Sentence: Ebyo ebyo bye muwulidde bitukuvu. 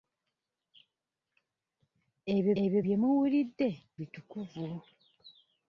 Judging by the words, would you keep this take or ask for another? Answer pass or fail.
pass